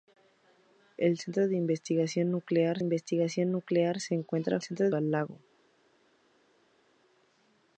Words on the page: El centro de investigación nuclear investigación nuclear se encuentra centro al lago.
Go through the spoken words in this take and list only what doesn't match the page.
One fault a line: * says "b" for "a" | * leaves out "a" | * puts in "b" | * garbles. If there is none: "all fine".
all fine